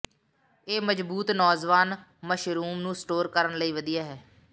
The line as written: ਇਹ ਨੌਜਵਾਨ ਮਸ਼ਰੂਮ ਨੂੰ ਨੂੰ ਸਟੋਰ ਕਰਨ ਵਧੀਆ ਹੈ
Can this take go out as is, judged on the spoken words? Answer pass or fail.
fail